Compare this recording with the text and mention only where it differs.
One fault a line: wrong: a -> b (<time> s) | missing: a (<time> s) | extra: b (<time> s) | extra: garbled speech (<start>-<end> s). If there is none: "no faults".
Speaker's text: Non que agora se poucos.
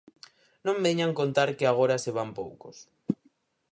extra: veñan contar (0.8 s)
extra: van (2.2 s)